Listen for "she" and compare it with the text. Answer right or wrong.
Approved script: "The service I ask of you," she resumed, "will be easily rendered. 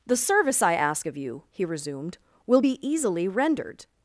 wrong